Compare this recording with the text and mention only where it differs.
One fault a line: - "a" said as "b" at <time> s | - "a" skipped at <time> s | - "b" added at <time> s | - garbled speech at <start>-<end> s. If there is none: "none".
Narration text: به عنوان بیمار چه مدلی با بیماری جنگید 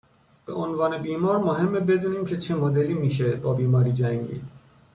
- "مهمه بدونیم که" added at 1.4 s
- "میشه" added at 2.9 s